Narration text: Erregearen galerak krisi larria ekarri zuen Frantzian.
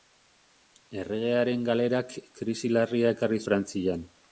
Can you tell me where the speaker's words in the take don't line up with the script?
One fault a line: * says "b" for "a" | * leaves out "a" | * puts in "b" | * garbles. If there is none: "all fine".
* leaves out "zuen"